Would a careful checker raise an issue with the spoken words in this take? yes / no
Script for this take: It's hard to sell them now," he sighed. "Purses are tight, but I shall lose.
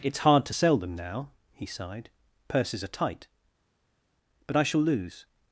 no